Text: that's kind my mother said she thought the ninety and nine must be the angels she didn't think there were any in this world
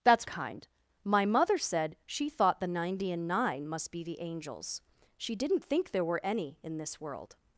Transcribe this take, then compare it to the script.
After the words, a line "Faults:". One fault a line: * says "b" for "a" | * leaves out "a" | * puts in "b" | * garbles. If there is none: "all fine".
that's kind my mother said she thought the ninety and nine must be the angels she didn't think there were any in this world
Faults:
all fine